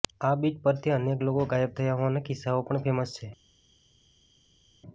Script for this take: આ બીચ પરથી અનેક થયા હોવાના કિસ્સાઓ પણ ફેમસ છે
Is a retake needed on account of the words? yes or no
yes